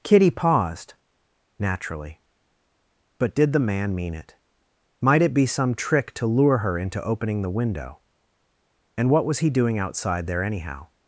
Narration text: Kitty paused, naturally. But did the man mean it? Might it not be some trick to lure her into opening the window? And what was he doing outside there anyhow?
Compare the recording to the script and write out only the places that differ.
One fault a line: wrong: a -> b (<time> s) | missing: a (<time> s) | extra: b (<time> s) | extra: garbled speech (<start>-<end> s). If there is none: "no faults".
missing: not (5.3 s)